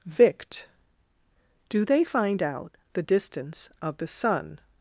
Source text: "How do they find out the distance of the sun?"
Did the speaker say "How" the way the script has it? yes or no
no